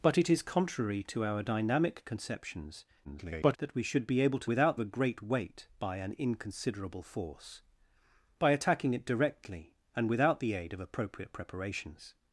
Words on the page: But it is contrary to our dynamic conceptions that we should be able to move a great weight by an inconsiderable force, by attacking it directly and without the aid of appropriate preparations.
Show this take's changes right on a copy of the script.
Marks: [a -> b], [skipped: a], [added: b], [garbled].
But it is contrary to our dynamic conceptions [garbled] that we should be able to [move -> without] a great weight by an inconsiderable force, by attacking it directly and without the aid of appropriate preparations.